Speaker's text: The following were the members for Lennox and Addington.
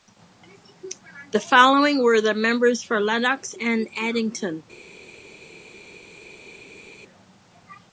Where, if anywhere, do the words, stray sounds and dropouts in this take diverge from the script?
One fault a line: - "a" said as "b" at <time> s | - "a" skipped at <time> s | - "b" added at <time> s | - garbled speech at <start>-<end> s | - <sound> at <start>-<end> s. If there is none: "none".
none